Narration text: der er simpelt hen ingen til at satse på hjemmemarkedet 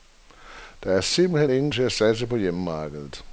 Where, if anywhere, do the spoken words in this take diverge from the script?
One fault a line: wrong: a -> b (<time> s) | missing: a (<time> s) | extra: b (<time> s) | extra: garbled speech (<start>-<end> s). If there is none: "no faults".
no faults